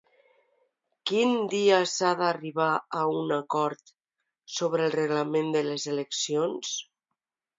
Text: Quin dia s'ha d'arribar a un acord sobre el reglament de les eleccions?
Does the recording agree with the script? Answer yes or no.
yes